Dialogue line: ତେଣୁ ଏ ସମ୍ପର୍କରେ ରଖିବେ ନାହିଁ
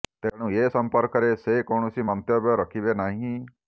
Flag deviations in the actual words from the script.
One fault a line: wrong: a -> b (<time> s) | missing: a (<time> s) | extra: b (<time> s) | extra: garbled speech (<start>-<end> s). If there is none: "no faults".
extra: ସେ କୌଣସି ମନ୍ତବ୍ୟ (1.4 s)